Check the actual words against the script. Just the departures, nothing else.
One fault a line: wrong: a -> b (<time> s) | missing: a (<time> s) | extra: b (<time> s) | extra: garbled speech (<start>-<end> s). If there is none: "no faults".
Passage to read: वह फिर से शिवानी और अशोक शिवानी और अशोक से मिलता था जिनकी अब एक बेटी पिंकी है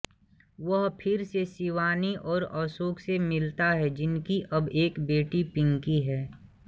missing: शिवानी और अशोक (3.0 s)
wrong: था -> है (3.7 s)